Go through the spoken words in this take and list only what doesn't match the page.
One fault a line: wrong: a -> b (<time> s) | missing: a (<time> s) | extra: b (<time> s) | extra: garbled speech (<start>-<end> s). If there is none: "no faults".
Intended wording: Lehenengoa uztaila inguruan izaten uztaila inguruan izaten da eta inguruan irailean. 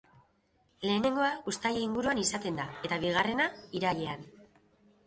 missing: uztaila inguruan izaten (2.6 s)
wrong: inguruan -> bigarrena (3.1 s)